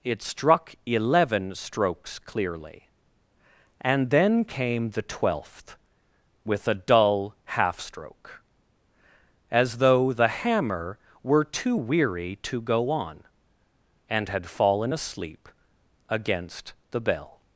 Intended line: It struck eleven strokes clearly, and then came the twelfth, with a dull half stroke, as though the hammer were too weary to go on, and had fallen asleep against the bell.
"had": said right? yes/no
yes